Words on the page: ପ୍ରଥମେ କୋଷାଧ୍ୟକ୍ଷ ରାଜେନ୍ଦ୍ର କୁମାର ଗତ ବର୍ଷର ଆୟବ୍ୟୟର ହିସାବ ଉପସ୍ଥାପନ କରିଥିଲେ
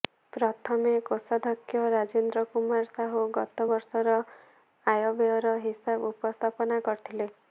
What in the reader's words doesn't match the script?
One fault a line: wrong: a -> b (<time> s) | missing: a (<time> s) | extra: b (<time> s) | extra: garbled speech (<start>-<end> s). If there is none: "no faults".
extra: ସାହୁ (2.9 s)